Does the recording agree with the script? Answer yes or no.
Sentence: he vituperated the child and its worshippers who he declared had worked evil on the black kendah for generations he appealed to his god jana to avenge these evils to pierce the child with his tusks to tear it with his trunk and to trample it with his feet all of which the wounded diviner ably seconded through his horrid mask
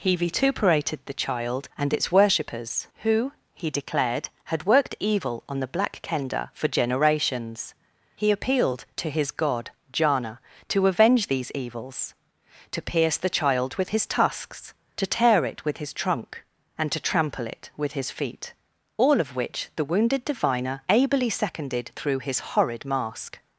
yes